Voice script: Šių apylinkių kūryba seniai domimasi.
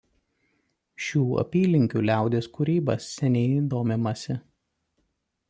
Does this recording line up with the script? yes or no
no